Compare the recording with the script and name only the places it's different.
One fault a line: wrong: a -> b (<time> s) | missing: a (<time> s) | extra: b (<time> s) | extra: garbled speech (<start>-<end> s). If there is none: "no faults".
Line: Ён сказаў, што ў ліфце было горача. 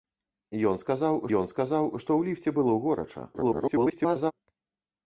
extra: ён сказаў (1.4 s)
extra: garbled speech (3.3-4.3 s)